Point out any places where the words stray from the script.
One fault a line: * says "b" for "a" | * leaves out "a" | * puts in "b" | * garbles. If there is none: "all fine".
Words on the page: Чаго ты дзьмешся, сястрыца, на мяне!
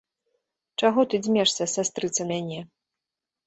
* leaves out "на"